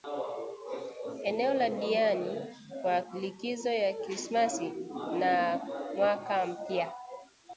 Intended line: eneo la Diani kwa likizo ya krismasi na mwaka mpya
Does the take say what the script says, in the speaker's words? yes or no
yes